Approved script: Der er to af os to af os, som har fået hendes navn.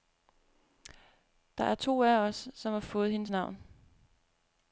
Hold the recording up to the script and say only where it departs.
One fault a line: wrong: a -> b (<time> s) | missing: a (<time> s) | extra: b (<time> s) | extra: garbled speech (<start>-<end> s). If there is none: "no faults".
missing: to af os (2.5 s)